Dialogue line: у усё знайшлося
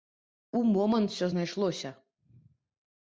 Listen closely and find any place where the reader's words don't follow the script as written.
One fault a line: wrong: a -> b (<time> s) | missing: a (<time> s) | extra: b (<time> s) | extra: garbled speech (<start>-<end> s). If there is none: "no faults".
extra: момант (0.8 s)